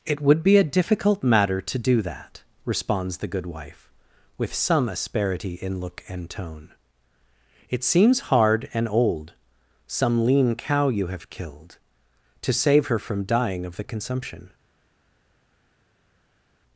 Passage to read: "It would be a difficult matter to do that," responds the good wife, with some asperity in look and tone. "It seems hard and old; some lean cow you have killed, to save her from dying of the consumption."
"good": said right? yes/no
yes